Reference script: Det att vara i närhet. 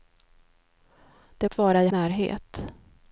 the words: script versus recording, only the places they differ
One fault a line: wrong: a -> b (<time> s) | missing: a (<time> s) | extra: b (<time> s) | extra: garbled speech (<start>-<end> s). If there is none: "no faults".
no faults